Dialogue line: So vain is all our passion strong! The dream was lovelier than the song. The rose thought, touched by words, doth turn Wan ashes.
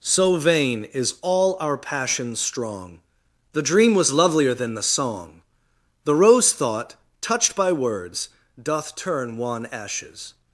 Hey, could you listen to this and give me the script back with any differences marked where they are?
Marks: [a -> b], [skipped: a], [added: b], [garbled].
So vain is all our passion strong! The dream was lovelier than the song. The rose thought, touched by words, doth turn Wan ashes.